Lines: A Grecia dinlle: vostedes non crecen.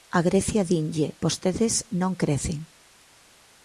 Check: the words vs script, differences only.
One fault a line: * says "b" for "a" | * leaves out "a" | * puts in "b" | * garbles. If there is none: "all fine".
all fine